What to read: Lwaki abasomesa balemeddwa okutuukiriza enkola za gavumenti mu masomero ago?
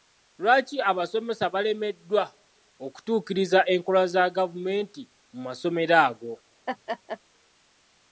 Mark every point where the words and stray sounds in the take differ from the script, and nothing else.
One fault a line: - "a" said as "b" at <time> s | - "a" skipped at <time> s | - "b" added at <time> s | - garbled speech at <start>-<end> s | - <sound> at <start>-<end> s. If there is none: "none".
- laugh at 6.7-7.2 s